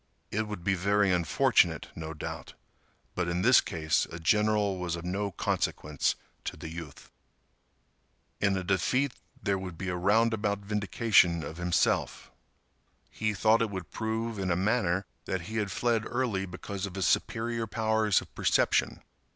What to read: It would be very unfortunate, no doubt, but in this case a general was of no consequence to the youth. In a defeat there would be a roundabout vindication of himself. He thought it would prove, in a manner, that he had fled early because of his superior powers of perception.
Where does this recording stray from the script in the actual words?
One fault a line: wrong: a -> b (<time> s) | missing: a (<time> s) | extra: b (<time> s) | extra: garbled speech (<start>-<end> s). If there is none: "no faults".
no faults